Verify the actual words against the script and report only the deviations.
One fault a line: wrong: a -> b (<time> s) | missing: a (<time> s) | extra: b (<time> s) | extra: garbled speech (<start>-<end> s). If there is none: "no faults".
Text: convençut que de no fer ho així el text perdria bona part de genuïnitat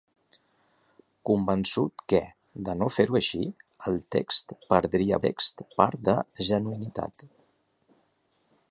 wrong: bona -> text (5.3 s)